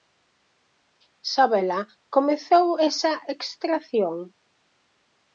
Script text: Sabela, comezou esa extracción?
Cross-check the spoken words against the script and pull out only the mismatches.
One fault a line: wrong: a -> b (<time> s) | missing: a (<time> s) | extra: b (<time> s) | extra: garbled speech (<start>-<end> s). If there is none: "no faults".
no faults